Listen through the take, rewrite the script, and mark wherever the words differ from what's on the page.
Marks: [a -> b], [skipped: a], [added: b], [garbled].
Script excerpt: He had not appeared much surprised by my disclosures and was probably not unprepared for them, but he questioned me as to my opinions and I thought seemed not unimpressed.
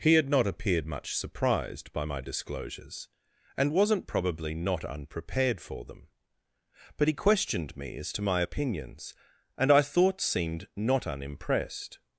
He had not appeared much surprised by my disclosures and [was -> wasn't] probably not unprepared for them, but he questioned me as to my opinions and I thought seemed not unimpressed.